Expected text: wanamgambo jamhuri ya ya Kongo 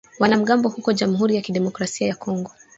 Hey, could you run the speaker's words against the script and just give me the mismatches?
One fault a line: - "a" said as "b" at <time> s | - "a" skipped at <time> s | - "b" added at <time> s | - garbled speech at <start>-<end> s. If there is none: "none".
- "huko" added at 0.7 s
- "kidemokrasia" added at 1.4 s